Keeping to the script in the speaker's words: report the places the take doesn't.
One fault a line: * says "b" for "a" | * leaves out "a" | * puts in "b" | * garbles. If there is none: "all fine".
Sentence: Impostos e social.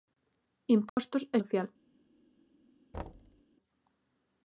all fine